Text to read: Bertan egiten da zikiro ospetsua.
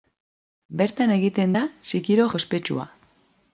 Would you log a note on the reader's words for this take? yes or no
no